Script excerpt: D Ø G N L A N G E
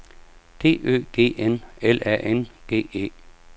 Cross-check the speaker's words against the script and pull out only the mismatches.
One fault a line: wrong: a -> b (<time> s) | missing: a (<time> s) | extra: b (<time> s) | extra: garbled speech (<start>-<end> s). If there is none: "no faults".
no faults